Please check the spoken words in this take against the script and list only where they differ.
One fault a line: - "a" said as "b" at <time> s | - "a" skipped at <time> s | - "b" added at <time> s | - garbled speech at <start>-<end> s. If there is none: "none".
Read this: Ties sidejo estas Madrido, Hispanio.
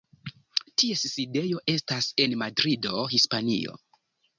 - "en" added at 2.3 s